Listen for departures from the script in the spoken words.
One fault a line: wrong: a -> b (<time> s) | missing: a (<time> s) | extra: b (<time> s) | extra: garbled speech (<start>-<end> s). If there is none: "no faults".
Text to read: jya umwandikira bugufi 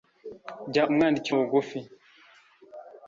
no faults